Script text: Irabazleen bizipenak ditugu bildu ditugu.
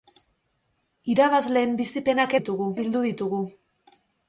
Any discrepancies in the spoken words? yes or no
no